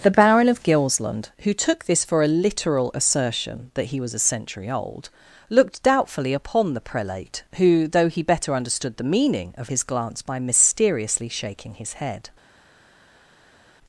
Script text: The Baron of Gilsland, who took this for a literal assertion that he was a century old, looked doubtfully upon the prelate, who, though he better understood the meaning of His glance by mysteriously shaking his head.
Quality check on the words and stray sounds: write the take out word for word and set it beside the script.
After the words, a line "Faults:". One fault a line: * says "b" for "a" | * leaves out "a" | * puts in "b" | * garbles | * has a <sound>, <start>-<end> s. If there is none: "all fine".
The Baron of Gilsland, who took this for a literal assertion that he was a century old, looked doubtfully upon the prelate, who, though he better understood the meaning of His glance by mysteriously shaking his head.
Faults:
all fine